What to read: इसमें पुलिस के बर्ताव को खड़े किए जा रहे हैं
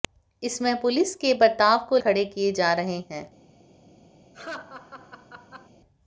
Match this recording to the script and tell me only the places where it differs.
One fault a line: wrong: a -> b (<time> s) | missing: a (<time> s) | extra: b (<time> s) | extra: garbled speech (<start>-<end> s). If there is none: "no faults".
no faults